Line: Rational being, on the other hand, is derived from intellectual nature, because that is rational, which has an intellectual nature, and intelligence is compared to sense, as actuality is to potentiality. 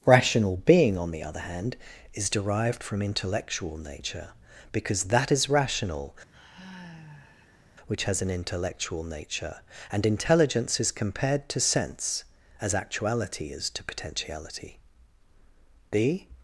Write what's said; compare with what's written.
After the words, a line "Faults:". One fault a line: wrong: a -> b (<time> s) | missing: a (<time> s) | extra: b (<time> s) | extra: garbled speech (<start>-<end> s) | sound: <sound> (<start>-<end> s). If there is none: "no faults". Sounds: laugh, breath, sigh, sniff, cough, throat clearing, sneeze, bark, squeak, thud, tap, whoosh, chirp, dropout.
Rational being, on the other hand, is derived from intellectual nature, because that is rational, which has an intellectual nature, and intelligence is compared to sense, as actuality is to potentiality. The
Faults:
sound: sigh (6.3-7.6 s)
extra: The (15.9 s)